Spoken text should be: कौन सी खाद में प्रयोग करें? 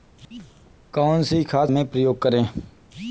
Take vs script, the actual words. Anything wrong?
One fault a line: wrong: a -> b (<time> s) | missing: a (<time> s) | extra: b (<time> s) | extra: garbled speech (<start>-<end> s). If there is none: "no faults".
no faults